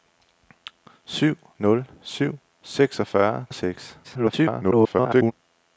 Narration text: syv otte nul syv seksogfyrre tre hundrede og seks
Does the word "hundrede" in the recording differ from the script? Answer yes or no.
yes